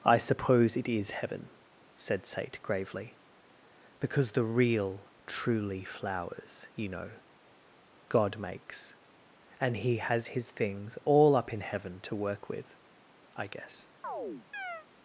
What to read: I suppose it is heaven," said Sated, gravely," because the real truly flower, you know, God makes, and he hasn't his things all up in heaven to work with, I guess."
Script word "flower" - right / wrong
wrong